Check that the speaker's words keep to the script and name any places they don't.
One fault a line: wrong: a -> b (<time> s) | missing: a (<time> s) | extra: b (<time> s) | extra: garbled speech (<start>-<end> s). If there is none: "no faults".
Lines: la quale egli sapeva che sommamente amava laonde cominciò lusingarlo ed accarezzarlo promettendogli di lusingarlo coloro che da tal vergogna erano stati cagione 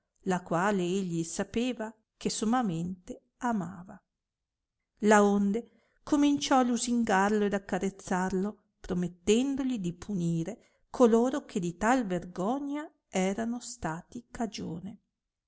wrong: lusingarlo -> punire (9.9 s)
wrong: da -> di (11.6 s)